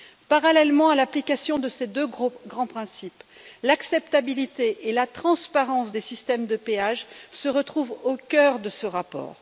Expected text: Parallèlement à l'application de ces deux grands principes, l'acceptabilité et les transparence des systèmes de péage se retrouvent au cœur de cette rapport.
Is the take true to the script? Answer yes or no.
no